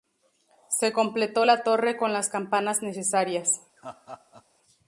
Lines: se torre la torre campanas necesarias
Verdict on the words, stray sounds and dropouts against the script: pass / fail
fail